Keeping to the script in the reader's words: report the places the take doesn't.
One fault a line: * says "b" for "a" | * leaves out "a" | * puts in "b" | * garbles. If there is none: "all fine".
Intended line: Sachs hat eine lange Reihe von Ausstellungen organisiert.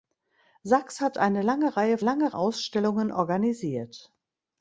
* says "lange" for "von"